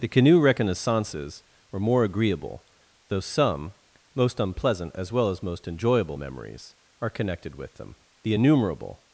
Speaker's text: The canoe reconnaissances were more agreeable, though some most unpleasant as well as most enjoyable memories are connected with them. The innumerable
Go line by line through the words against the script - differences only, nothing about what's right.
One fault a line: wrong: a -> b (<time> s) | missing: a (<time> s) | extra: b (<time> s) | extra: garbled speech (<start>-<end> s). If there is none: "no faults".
no faults